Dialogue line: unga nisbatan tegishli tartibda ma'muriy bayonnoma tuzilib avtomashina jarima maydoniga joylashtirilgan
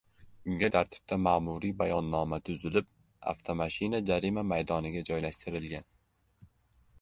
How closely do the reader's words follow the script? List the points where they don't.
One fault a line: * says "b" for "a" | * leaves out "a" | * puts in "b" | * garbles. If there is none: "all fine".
* leaves out "nisbatan tegishli"